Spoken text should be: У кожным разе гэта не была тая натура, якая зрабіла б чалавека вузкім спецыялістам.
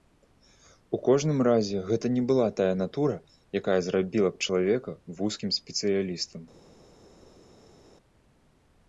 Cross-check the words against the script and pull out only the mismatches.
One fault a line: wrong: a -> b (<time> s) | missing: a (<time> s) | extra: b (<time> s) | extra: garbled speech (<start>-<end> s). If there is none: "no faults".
no faults